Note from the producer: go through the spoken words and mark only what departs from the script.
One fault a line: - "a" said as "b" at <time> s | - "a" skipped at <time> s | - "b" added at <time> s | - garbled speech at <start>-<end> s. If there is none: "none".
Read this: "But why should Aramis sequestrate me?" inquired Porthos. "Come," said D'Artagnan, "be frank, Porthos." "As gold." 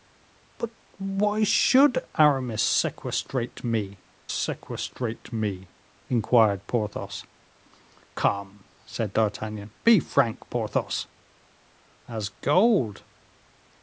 - "sequestrate me" added at 4.3 s